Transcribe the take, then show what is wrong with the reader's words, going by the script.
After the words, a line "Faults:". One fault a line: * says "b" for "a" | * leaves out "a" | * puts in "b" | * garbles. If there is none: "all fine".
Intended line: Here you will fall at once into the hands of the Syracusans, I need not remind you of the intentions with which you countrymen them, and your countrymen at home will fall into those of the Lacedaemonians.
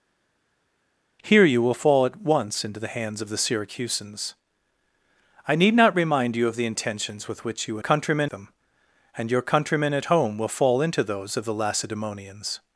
Here you will fall at once into the hands of the Syracusans, I need not remind you of the intentions with which you countrymen them, and your countrymen at home will fall into those of the Lacedaemonians.
Faults:
all fine